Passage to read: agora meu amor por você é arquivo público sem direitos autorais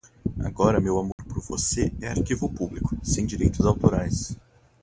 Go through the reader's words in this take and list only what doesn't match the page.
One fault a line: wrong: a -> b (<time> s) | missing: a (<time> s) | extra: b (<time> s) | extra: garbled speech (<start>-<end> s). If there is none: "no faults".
no faults